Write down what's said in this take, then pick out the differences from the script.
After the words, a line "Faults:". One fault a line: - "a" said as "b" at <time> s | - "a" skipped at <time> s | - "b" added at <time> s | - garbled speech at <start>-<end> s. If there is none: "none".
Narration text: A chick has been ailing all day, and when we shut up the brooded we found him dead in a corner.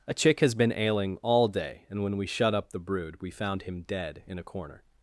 A chick has been ailing all day, and when we shut up the brood we found him dead in a corner.
Faults:
- "brooded" said as "brood" at 2.8 s